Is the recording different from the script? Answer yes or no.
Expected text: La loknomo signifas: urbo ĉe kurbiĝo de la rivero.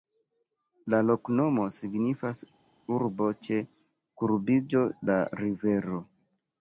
yes